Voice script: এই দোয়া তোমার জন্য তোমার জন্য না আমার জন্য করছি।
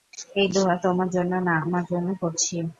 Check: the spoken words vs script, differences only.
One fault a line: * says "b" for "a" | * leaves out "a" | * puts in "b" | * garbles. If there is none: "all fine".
* leaves out "তোমার জন্য"